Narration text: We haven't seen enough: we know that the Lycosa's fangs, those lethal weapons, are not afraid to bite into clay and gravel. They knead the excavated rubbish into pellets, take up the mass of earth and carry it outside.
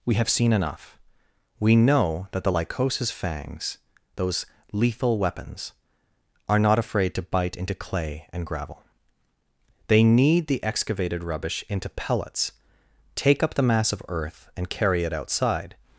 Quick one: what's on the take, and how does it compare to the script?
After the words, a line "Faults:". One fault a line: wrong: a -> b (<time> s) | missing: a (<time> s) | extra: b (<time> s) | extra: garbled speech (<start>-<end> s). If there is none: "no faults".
We have seen enough: we know that the Lycosa's fangs, those lethal weapons, are not afraid to bite into clay and gravel. They knead the excavated rubbish into pellets, take up the mass of earth and carry it outside.
Faults:
wrong: haven't -> have (0.1 s)